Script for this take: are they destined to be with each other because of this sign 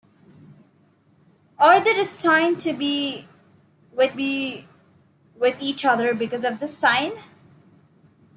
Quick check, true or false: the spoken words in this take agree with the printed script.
false